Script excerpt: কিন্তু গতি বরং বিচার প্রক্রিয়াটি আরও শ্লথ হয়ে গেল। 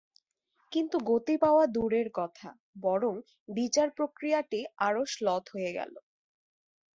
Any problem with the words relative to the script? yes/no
yes